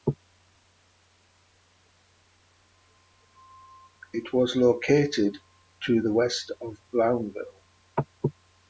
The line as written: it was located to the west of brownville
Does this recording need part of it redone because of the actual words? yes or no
no